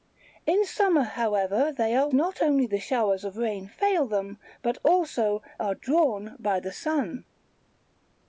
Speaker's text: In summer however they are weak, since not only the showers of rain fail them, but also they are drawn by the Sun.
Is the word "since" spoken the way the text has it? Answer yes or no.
no